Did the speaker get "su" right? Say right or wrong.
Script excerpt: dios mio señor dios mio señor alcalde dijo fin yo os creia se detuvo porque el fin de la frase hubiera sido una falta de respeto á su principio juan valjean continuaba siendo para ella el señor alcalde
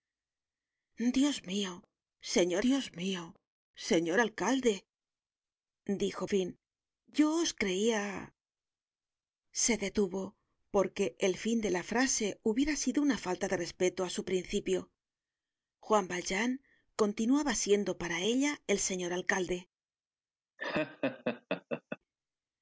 right